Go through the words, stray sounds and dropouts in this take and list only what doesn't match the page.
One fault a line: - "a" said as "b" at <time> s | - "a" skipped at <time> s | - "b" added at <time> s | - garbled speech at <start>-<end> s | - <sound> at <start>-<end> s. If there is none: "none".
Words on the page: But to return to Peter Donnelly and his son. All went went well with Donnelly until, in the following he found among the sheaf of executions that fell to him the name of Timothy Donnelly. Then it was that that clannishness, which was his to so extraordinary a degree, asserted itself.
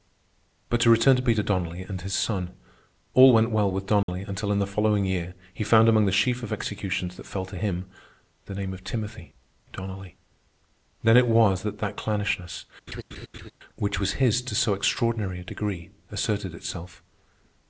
- "went" skipped at 3.5 s
- dropout at 4.0-4.1 s
- "year" added at 5.0 s
- laugh at 12.9-13.5 s